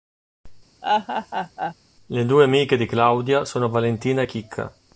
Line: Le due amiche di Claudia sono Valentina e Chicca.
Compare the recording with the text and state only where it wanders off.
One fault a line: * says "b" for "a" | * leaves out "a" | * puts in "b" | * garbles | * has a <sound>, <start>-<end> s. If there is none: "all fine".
* has a laugh, 0.8-1.7 s